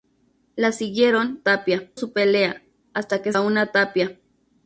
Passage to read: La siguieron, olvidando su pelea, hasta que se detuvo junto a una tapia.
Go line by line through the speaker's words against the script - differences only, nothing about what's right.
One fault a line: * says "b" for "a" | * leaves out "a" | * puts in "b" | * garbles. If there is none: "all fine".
* says "tapia" for "olvidando"
* leaves out "se detuvo junto"